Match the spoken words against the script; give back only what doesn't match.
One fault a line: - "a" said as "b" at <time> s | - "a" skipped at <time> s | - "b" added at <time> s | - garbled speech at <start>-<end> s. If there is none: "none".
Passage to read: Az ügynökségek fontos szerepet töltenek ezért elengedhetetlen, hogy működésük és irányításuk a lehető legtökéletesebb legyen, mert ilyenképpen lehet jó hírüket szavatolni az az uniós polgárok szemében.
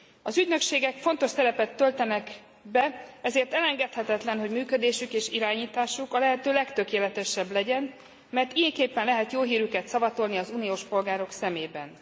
- "be" added at 2.6 s
- "az" skipped at 10.5 s